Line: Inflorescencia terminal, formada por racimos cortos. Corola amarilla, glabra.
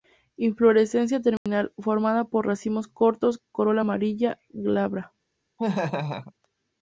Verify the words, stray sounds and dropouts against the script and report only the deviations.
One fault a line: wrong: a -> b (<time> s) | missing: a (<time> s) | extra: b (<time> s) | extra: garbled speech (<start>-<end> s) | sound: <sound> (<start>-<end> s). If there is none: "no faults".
sound: dropout (1.4-1.5 s)
sound: laugh (5.6-6.3 s)